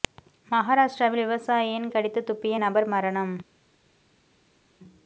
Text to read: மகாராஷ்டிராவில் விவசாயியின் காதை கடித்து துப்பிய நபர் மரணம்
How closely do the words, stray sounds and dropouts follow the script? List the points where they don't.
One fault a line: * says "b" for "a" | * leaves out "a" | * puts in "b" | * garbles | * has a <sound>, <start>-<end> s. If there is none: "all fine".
* leaves out "காதை"